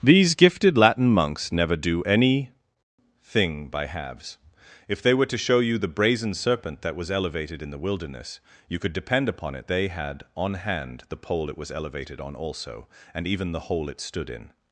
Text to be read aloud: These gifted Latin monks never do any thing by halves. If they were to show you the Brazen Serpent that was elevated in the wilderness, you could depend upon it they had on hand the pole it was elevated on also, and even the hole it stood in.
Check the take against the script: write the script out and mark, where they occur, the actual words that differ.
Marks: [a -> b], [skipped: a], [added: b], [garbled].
These gifted Latin monks never do any thing by halves. If they were to show you the Brazen Serpent that was elevated in the wilderness, you could depend upon it they had on hand the pole it was elevated on also, and even the hole it stood in.